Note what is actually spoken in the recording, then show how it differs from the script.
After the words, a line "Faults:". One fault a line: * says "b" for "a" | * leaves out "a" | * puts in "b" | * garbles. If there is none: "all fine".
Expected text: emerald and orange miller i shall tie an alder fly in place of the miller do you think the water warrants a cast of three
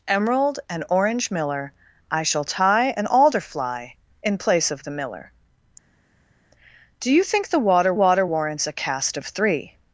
emerald and orange miller i shall tie an alder fly in place of the miller do you think the water water warrants a cast of three
Faults:
* puts in "water"